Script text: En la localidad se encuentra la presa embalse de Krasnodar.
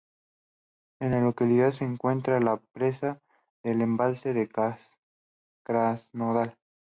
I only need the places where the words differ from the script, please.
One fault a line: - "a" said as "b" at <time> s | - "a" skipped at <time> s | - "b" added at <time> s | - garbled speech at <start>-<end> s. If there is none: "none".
- "del" added at 3.6 s